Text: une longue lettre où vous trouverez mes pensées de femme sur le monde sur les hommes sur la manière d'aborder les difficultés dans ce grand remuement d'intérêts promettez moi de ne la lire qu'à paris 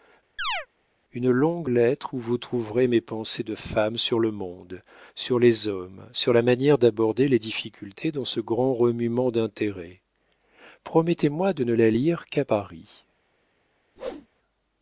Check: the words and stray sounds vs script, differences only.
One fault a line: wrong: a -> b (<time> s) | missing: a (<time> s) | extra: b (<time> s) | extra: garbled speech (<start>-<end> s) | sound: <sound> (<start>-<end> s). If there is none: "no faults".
sound: chirp (0.4-0.7 s)
sound: whoosh (14.0-14.3 s)